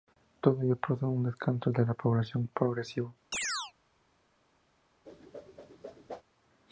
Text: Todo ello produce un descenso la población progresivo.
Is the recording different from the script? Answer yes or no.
yes